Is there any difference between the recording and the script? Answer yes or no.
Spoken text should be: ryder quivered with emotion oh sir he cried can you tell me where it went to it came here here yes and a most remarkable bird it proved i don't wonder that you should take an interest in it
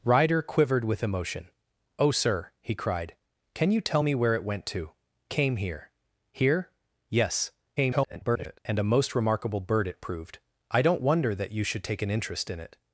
yes